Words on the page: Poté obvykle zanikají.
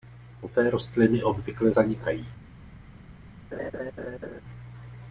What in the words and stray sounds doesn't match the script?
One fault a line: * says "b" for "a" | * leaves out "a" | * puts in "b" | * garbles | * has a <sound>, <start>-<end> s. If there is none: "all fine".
* puts in "rostliny"
* has a laugh, 3.5-4.4 s